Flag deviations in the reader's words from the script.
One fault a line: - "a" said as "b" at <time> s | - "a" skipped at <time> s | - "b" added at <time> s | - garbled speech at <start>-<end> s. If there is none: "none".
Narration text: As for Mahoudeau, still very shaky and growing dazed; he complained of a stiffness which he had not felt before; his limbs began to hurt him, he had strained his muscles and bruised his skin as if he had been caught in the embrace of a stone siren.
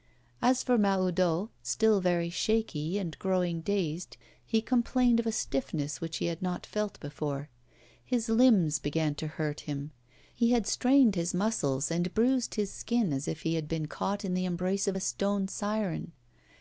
none